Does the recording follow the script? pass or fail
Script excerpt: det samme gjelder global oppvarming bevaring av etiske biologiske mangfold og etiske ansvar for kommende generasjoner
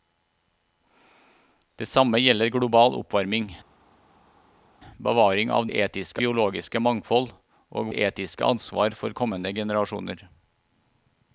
pass